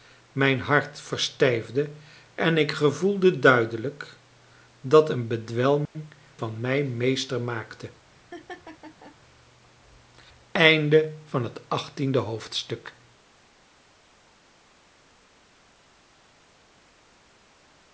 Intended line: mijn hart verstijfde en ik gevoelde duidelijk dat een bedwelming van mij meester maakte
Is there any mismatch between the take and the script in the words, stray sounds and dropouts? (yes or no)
yes